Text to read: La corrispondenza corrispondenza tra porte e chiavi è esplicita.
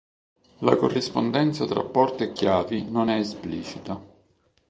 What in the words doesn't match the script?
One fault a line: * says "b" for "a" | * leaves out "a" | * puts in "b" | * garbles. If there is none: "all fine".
* leaves out "corrispondenza"
* puts in "non"